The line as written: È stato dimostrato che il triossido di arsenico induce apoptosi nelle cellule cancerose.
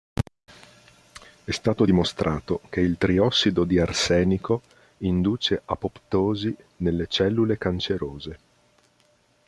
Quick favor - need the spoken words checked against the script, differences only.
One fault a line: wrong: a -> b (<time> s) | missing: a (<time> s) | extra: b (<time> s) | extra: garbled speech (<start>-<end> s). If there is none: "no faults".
no faults